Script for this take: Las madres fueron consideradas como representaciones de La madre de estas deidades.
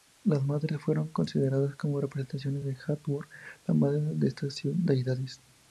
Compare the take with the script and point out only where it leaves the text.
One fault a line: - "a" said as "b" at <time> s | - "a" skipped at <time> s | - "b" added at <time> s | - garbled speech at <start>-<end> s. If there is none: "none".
- "Hathor" added at 2.9 s